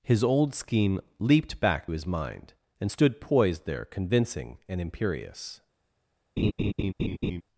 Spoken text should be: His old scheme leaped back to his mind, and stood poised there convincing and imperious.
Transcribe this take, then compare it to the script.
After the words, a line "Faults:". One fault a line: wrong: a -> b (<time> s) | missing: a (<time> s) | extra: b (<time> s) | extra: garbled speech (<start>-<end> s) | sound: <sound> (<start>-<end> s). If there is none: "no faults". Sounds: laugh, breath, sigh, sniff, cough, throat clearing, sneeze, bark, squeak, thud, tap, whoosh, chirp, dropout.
His old scheme leaped back his mind, and stood poised there convincing and imperious.
Faults:
missing: to (1.9 s)
sound: laugh (6.4-7.4 s)